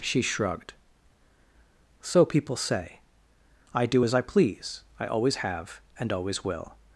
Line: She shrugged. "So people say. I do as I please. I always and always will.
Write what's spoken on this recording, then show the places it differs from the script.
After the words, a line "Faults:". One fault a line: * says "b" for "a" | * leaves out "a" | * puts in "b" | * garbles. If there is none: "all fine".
She shrugged. "So people say. I do as I please. I always have and always will.
Faults:
* puts in "have"